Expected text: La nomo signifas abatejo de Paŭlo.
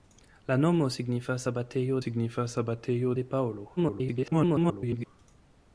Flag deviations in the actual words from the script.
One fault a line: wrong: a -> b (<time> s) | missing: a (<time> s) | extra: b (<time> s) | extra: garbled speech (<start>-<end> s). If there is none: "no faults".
extra: signifas abatejo (2.0 s)
extra: garbled speech (3.8-5.1 s)